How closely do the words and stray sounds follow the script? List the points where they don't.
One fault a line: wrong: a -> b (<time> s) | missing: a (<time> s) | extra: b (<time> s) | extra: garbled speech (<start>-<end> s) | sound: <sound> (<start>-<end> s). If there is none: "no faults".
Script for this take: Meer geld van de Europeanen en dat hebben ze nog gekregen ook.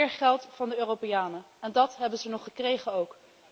no faults